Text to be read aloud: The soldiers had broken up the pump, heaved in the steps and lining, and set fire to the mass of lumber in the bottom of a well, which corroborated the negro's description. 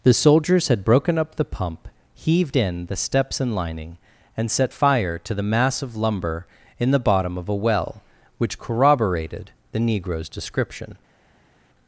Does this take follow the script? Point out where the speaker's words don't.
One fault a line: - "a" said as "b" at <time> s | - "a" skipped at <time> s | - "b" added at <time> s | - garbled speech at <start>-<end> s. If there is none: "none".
none